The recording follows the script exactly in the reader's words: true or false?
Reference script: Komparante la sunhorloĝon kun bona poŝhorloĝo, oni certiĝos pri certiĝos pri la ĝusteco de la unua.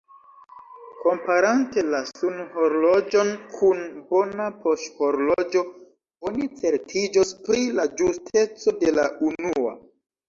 false